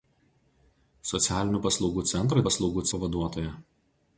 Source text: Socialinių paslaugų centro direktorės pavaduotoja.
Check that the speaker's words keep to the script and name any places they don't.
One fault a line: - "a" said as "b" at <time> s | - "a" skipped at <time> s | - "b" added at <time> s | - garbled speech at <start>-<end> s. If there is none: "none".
- "direktorės" said as "paslaugų" at 2.5 s